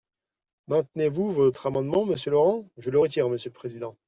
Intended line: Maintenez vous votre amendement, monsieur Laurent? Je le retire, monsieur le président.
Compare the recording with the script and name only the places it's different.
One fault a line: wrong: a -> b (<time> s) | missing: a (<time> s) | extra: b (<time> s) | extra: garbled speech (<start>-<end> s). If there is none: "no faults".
no faults